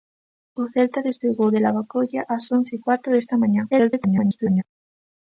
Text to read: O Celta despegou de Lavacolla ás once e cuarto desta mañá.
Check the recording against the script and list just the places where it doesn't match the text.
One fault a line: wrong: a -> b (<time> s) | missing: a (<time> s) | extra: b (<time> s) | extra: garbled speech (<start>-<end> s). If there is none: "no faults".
extra: garbled speech (3.7-4.6 s)